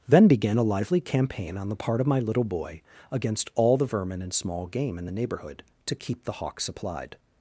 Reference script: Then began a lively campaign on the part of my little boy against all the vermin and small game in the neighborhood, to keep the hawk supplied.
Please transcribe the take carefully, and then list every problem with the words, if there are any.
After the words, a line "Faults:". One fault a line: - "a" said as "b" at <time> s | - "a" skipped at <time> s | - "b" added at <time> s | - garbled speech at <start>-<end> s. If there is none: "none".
Then began a lively campaign on the part of my little boy against all the vermin and small game in the neighborhood, to keep the hawk supplied.
Faults:
none